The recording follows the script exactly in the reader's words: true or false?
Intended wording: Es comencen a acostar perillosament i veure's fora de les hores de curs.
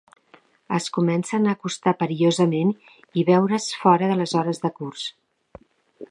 true